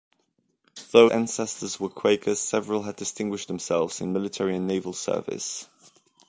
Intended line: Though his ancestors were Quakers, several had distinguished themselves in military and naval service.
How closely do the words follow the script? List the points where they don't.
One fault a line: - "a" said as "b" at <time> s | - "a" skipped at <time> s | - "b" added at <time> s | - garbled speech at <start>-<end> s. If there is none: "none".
- "his" skipped at 1.1 s